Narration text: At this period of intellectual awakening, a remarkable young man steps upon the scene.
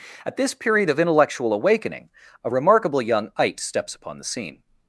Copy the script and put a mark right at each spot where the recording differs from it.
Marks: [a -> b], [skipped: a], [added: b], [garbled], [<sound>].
At this period of intellectual awakening, a remarkable young [man -> ite] steps upon the scene.